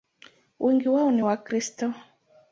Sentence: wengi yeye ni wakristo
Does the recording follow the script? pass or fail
fail